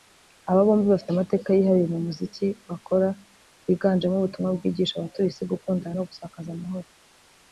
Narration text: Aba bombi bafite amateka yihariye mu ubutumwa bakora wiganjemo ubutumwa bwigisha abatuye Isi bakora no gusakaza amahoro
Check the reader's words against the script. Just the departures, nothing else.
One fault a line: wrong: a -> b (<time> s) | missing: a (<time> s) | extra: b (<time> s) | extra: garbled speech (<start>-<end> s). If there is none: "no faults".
wrong: ubutumwa -> muziki (2.1 s)
wrong: bakora -> gukundana (5.5 s)